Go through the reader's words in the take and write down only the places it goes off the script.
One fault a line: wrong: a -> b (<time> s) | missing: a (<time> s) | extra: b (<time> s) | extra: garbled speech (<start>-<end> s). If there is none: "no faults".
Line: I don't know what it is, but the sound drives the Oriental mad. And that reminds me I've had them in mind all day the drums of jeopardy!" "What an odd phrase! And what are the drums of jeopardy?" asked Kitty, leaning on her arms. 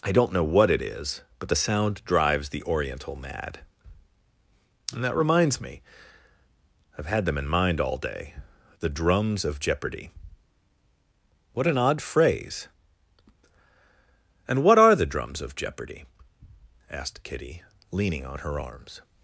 no faults